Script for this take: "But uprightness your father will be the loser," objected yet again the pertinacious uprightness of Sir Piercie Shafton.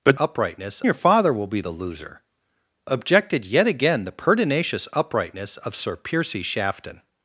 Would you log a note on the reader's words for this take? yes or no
no